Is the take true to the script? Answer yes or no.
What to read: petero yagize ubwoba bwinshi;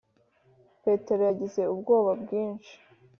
yes